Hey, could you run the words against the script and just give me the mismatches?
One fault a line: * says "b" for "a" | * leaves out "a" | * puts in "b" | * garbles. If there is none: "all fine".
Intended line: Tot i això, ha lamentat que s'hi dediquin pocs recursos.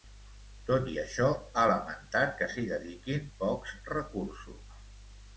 all fine